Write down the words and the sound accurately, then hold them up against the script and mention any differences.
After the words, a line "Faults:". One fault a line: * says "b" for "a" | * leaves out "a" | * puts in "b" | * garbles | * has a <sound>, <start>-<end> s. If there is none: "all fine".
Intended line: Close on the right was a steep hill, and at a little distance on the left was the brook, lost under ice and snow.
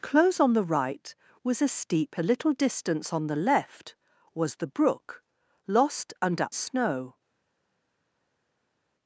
Close on the right was a steep a little distance on the left was the brook, lost under snow.
Faults:
* leaves out "hill and at"
* leaves out "ice and"